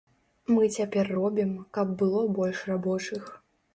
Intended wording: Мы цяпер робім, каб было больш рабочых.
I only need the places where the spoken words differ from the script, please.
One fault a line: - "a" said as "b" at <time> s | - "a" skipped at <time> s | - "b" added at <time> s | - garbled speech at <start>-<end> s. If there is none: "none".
none